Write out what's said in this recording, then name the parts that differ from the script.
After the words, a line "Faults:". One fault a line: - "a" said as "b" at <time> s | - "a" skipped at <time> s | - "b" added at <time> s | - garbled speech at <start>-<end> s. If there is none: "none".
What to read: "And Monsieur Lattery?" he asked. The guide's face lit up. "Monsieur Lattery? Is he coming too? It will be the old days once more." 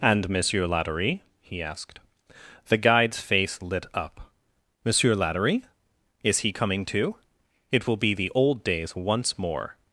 "And Monsieur Lattery?" he asked. The guide's face lit up. "Monsieur Lattery? Is he coming too? It will be the old days once more."
Faults:
none